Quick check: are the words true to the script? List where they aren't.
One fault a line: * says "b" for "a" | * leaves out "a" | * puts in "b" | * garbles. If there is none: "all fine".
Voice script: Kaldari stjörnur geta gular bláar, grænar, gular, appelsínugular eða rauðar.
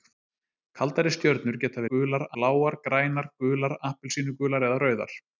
all fine